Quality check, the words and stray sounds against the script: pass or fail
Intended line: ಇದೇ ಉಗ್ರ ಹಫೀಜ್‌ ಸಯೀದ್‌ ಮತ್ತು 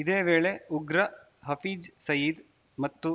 fail